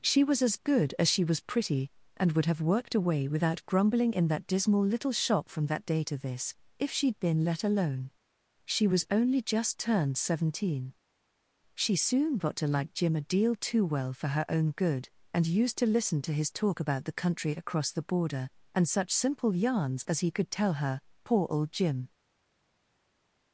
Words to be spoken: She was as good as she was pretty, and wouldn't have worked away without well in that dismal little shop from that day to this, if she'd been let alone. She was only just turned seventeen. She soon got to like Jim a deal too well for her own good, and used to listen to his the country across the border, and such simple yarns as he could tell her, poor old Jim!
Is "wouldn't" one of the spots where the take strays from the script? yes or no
yes